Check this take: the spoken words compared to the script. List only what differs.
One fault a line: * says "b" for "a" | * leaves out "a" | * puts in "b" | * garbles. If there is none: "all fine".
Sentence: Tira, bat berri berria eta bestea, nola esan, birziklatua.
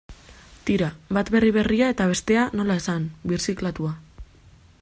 all fine